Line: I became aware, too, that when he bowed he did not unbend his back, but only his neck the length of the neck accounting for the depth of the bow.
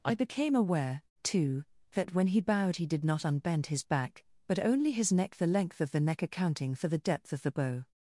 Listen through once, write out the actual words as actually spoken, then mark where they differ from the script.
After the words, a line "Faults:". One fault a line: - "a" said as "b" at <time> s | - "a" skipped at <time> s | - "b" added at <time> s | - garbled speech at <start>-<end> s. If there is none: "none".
I became aware, too, that when he bowed he did not unbend his back, but only his neck the length of the neck accounting for the depth of the bow.
Faults:
none